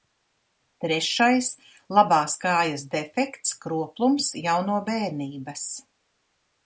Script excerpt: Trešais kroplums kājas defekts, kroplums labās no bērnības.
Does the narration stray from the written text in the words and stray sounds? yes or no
yes